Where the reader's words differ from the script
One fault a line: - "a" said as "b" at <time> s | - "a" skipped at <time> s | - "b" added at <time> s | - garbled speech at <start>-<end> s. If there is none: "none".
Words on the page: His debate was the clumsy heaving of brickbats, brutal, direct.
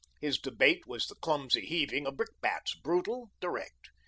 none